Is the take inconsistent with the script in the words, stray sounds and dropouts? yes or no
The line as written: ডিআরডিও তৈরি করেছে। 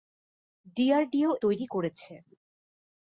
no